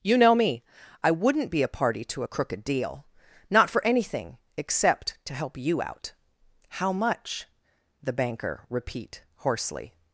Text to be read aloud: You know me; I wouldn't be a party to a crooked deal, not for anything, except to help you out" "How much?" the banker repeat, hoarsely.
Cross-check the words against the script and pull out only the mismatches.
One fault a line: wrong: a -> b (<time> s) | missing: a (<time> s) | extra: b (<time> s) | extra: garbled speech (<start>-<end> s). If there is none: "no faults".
no faults